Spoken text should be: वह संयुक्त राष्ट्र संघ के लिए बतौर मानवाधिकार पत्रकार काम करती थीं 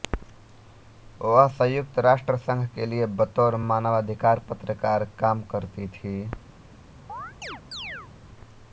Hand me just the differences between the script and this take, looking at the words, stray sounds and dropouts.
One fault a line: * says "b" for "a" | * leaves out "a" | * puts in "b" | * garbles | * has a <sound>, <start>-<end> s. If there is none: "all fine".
* has a chirp, 7.1-8.1 s